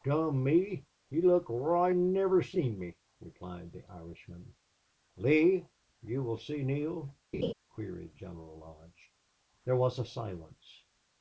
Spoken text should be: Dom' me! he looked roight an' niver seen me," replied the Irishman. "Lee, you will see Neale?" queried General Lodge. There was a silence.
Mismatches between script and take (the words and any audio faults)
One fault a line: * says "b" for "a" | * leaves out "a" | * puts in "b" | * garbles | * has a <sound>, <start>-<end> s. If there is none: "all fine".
* has a laugh, 7.3-7.5 s